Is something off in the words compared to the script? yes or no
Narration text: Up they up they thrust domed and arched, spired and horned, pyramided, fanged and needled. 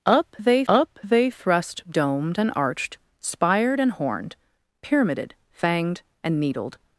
no